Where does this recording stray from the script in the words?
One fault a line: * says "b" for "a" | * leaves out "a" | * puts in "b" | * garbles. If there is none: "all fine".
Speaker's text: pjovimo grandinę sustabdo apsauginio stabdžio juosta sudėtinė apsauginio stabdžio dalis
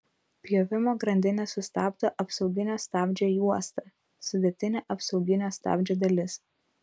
all fine